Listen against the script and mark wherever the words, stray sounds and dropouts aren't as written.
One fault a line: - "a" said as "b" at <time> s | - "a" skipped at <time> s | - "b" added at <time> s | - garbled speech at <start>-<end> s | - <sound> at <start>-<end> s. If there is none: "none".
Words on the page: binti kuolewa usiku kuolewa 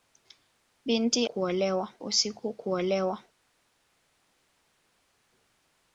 none